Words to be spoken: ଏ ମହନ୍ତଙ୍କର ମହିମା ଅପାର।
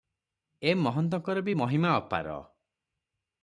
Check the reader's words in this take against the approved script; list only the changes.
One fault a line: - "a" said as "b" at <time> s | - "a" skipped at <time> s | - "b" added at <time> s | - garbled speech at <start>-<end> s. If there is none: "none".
- "ବି" added at 1.4 s